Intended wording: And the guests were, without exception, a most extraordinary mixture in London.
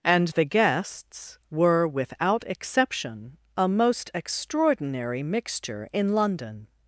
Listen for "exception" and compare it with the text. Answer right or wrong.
right